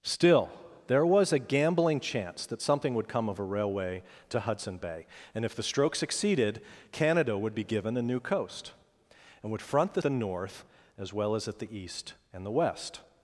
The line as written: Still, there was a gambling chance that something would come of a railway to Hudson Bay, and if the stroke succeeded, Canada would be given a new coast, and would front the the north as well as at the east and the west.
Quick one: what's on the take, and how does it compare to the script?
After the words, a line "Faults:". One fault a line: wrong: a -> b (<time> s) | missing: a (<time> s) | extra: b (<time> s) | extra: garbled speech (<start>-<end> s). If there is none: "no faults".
Still, there was a gambling chance that something would come of a railway to Hudson Bay, and if the stroke succeeded, Canada would be given a new coast, and would front the the north as well as at the east and the west.
Faults:
no faults